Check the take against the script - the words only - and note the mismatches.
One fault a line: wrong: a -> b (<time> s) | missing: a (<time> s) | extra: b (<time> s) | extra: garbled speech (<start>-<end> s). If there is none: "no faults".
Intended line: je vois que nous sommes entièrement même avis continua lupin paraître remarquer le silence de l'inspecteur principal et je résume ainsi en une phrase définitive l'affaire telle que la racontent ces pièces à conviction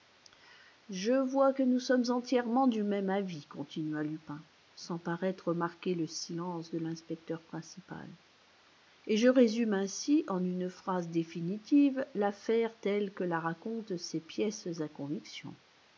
extra: du (2.6 s)
extra: sans (4.7 s)